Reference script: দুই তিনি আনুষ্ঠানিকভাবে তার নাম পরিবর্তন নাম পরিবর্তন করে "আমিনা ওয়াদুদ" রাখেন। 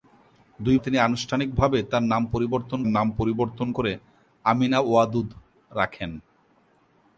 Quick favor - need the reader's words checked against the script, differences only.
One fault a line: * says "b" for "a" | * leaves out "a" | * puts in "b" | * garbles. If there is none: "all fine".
all fine